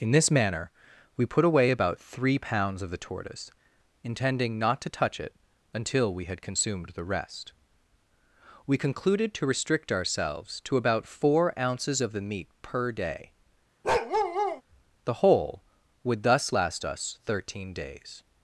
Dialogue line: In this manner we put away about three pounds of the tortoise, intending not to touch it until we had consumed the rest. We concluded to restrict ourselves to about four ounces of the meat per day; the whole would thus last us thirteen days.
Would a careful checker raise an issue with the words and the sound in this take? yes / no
yes